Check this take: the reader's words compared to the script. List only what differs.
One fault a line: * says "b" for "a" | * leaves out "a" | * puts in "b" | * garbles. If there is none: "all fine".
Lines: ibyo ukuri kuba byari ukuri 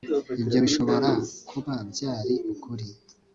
* says "bishobora" for "ukuri"